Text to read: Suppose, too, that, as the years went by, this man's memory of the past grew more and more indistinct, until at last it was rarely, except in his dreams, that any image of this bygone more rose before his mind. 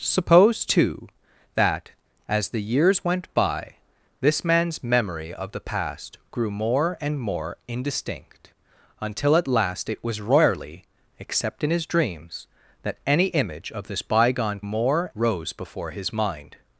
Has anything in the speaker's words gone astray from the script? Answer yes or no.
no